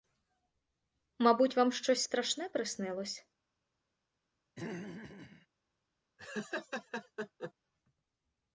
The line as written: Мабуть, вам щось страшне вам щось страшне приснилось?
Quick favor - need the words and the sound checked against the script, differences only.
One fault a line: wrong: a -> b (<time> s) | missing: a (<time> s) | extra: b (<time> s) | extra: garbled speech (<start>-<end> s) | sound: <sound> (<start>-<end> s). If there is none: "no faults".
missing: вам щось страшне (2.5 s)
sound: throat clearing (4.6-5.5 s)
sound: laugh (6.2-7.5 s)